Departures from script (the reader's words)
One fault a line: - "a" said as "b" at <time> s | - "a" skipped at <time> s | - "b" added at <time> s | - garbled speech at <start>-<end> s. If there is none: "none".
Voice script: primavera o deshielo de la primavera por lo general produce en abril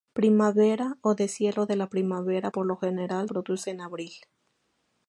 none